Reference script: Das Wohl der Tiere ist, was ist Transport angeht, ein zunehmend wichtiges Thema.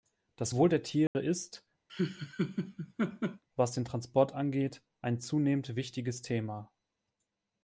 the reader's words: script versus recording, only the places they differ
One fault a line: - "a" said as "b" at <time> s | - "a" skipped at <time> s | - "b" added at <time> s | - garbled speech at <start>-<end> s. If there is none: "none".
- "ist" said as "den" at 3.7 s